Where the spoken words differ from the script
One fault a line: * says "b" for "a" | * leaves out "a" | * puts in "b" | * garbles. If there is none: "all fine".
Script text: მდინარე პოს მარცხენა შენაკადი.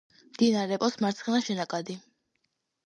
all fine